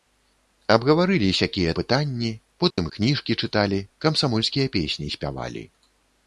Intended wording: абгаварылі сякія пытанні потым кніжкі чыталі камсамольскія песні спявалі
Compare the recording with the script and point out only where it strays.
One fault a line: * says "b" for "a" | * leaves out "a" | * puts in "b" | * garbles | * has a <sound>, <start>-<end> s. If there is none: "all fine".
* has a dropout, 2.7-2.8 s